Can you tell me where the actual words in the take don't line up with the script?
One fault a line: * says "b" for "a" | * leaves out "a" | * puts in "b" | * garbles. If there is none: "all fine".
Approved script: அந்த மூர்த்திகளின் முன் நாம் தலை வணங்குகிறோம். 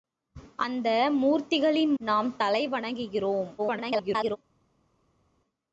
* leaves out "முன்"
* garbles